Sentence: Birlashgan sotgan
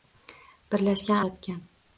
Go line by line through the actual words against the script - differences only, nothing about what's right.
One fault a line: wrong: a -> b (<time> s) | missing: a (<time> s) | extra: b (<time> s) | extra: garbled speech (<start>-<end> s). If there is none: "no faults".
no faults